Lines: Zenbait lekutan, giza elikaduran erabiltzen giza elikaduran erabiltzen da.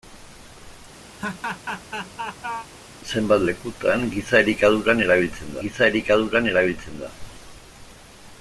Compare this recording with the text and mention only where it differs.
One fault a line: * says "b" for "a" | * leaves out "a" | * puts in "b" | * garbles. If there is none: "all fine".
all fine